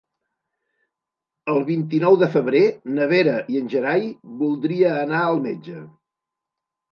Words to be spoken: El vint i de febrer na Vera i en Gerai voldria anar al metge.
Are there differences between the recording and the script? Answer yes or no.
yes